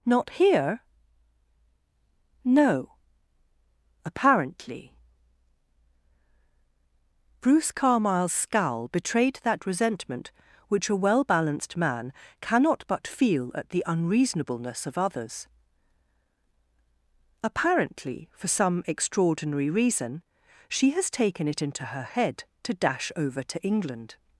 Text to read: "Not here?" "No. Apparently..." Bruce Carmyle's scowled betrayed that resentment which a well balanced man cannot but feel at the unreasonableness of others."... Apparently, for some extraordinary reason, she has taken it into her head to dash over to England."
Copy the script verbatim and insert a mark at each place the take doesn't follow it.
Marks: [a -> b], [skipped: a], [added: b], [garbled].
"Not here?" "No. Apparently..." Bruce Carmyle's [scowled -> scowl] betrayed that resentment which a well balanced man cannot but feel at the unreasonableness of others."... Apparently, for some extraordinary reason, she has taken it into her head to dash over to England."